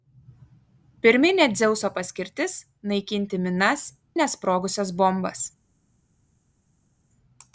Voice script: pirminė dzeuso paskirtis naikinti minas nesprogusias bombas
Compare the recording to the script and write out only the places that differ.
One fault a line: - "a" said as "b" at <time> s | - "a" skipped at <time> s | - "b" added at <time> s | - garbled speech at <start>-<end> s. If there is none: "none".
none